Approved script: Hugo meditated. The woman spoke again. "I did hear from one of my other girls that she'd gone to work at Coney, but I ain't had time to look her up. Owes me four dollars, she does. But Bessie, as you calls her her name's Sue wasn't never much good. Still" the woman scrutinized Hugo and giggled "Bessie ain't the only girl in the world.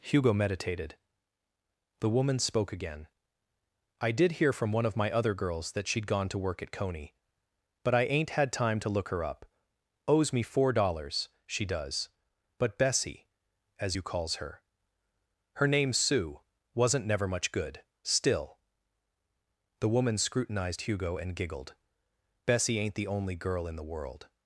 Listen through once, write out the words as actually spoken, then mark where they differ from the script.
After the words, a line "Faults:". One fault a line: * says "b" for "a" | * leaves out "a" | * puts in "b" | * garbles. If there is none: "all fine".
Hugo meditated. The woman spoke again. "I did hear from one of my other girls that she'd gone to work at Coney, but I ain't had time to look her up. Owes me four dollars, she does. But Bessie, as you calls her her name's Sue wasn't never much good. Still" the woman scrutinized Hugo and giggled "Bessie ain't the only girl in the world.
Faults:
all fine